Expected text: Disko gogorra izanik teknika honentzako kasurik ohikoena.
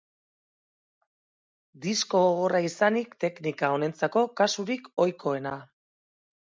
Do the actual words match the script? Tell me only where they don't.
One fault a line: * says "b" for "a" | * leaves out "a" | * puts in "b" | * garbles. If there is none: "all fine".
all fine